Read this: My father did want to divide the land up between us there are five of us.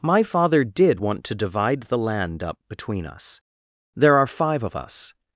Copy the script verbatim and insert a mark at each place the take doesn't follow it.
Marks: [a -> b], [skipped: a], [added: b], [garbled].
My father did want to divide the land up between us there are five of us.